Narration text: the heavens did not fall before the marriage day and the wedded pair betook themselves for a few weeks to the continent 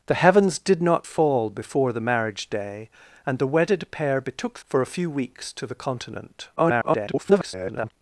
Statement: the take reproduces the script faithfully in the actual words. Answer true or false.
false